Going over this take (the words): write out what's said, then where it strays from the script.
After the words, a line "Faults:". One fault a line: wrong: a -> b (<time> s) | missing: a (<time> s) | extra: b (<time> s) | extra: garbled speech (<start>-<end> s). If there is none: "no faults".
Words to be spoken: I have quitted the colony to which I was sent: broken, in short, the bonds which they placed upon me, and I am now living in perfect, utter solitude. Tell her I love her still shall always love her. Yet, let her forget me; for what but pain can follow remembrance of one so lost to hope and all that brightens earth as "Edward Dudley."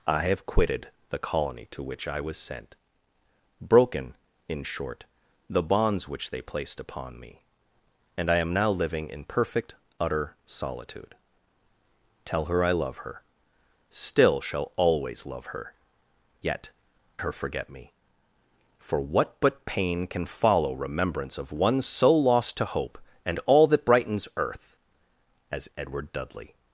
I have quitted the colony to which I was sent: broken, in short, the bonds which they placed upon me, and I am now living in perfect, utter solitude. Tell her I love her still shall always love her. Yet, her forget me; for what but pain can follow remembrance of one so lost to hope and all that brightens earth as "Edward Dudley."
Faults:
missing: let (16.7 s)